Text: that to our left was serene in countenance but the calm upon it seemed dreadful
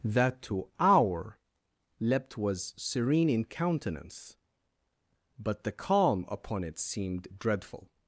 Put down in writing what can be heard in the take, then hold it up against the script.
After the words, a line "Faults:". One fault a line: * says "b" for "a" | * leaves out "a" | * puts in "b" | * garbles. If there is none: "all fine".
that to our leapt was serene in countenance but the calm upon it seemed dreadful
Faults:
* says "leapt" for "left"